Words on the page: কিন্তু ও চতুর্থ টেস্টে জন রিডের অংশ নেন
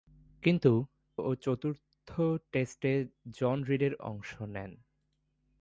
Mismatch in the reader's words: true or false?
false